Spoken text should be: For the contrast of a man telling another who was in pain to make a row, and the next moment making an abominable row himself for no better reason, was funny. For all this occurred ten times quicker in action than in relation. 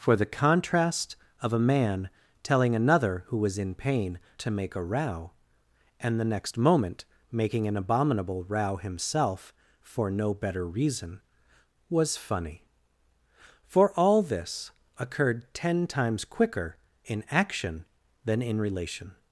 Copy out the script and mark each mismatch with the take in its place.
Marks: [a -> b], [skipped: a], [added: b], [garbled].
For the contrast of a man telling another who was in pain to make a row, and the next moment making an abominable row himself for no better reason, was funny. For all this occurred ten times quicker in action than in relation.